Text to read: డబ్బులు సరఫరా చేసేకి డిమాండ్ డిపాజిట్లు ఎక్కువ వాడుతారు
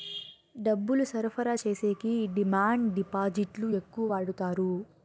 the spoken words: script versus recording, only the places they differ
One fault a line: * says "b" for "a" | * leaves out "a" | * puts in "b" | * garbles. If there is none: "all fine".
all fine